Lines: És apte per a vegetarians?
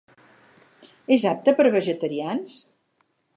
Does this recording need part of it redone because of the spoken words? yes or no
no